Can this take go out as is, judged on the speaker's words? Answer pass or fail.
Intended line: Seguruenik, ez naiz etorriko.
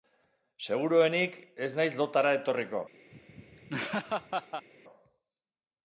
fail